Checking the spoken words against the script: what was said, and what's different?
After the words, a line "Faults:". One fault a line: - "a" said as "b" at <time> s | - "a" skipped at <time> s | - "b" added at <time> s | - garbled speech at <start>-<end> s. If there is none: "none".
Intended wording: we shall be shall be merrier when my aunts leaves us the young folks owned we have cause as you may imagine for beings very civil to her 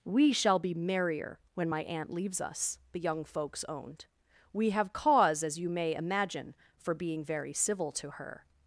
we shall be merrier when my aunt leaves us the young folks owned we have cause as you may imagine for being very civil to her
Faults:
- "shall be" skipped at 0.7 s
- "aunts" said as "aunt" at 1.8 s
- "beings" said as "being" at 6.9 s